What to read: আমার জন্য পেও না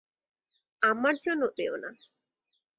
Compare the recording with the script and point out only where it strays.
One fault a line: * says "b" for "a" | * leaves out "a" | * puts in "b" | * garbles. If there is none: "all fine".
all fine